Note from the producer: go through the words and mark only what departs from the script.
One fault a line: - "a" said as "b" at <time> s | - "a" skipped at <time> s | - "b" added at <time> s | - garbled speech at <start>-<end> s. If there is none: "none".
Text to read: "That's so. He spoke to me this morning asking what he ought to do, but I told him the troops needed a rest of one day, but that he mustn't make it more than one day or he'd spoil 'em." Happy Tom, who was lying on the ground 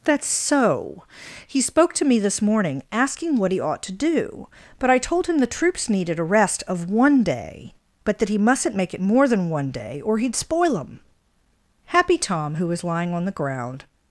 none